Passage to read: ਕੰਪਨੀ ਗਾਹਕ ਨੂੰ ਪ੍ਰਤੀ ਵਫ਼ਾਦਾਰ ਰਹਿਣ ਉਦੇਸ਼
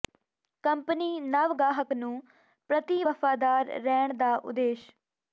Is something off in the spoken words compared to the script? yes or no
yes